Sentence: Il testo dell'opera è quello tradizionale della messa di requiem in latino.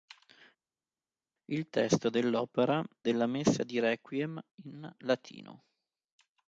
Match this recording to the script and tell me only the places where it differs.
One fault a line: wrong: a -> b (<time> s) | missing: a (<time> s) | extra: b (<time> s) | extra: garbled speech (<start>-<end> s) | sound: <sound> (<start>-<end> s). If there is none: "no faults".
missing: è quello tradizionale (2.8 s)